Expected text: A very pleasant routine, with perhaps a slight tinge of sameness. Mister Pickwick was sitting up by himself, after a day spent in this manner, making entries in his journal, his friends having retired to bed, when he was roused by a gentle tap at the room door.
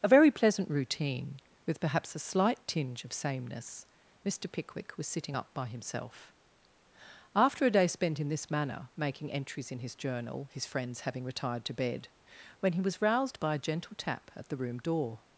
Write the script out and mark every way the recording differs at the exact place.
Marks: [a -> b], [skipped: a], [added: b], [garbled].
A very pleasant routine, with perhaps a slight tinge of sameness. Mister Pickwick was sitting up by himself, after a day spent in this manner, making entries in his journal, his friends having retired to bed, when he was roused by a gentle tap at the room door.